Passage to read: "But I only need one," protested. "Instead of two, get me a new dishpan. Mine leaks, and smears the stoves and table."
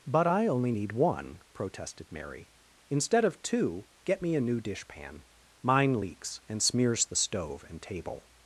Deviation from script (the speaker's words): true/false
true